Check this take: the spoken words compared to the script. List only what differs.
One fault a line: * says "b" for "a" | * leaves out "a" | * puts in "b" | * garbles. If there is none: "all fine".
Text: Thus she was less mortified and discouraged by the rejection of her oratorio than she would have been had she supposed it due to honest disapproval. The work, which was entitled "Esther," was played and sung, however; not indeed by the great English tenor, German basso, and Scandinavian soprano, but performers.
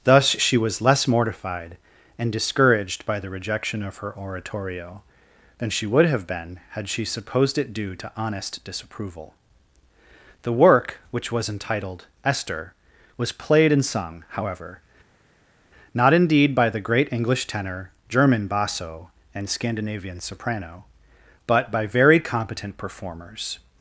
* puts in "by very competent"